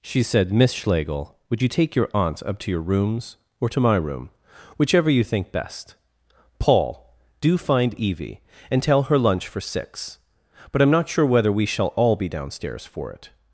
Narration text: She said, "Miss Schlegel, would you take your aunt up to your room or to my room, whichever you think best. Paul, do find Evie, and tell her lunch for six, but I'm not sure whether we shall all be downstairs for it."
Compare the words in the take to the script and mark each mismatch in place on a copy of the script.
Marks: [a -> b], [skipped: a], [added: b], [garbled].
She said, "Miss Schlegel, would you take your aunt up to your [room -> rooms] or to my room, whichever you think best. Paul, do find Evie, and tell her lunch for six, but I'm not sure whether we shall all be downstairs for it."